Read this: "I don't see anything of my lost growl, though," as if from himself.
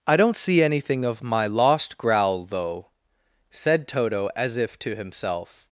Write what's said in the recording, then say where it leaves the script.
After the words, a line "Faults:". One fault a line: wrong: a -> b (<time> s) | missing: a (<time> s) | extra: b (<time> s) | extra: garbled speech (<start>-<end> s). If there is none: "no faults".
"I don't see anything of my lost growl, though," said Toto as if to himself.
Faults:
extra: said Toto (3.5 s)
wrong: from -> to (4.8 s)